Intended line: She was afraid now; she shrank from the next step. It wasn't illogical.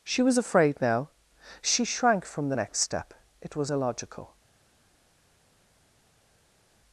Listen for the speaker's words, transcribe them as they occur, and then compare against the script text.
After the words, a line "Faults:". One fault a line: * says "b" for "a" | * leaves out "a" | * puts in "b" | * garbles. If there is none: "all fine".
She was afraid now; she shrank from the next step. It was illogical.
Faults:
* says "was" for "wasn't"